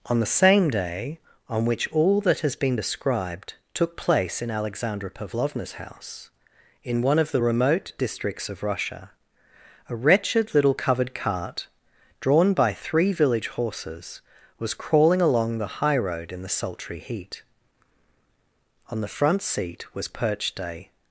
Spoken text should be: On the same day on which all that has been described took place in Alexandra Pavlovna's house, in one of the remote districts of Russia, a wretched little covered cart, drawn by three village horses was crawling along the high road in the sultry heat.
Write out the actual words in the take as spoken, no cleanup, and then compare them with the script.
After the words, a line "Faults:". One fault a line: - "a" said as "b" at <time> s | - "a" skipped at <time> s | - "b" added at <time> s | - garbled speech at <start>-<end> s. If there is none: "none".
On the same day on which all that has been described took place in Alexandra Pavlovna's house, in one of the remote districts of Russia, a wretched little covered cart, drawn by three village horses was crawling along the high road in the sultry heat. On the front seat was perched a
Faults:
- "On the front seat was perched a" added at 18.9 s